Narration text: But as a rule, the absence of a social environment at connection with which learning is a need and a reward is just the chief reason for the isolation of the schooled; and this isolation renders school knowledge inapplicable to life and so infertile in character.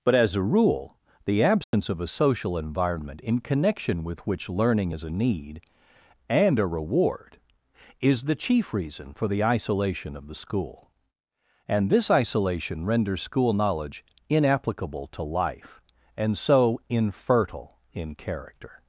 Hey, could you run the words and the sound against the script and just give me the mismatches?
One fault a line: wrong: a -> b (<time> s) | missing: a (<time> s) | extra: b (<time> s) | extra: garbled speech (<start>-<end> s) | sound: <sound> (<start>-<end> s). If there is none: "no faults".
sound: dropout (1.6-1.7 s)
wrong: at -> in (3.2 s)
missing: just (8.2 s)
wrong: schooled -> school (10.4 s)